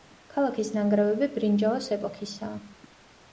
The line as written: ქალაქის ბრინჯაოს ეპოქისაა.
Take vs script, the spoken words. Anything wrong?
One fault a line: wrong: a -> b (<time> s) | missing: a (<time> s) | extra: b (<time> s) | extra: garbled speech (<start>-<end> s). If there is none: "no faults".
extra: ნანგრევები (0.8 s)